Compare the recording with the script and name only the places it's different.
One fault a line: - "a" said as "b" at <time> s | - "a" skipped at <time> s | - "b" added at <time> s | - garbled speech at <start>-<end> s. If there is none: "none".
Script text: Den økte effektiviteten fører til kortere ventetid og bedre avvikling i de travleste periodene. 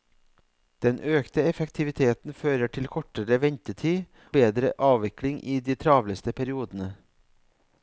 - "og" skipped at 4.0 s